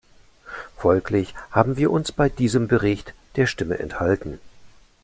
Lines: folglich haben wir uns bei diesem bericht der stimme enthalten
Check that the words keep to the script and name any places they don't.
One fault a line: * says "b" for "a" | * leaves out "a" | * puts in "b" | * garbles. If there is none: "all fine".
all fine